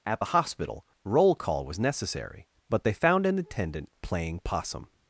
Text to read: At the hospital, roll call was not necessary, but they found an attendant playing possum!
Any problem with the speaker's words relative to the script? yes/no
yes